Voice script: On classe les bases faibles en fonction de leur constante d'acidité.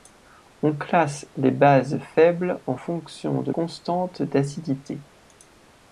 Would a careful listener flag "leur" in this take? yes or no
yes